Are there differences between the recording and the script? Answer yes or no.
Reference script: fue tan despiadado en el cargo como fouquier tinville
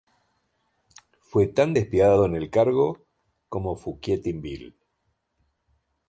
no